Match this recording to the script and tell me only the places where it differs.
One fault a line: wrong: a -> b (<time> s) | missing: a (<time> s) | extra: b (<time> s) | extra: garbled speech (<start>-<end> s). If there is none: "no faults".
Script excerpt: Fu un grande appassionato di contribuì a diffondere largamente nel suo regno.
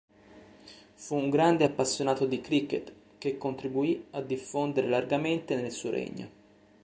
extra: cricket che (2.4 s)